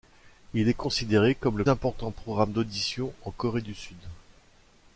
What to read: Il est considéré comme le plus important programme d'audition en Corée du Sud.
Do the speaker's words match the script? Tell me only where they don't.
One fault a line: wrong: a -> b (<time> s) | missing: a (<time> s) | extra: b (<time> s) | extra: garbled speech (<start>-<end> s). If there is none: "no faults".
missing: plus (1.6 s)